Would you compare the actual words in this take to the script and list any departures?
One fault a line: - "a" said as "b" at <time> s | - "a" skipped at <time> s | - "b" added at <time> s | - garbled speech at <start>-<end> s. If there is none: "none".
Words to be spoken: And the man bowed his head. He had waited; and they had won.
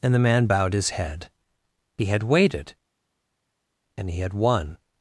- "they" said as "he" at 4.1 s